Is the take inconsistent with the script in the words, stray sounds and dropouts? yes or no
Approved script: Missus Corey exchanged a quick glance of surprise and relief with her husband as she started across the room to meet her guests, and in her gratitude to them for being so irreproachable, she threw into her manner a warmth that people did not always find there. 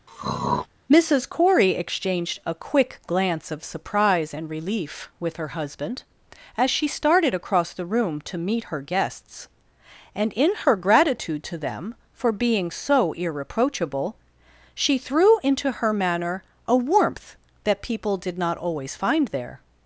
yes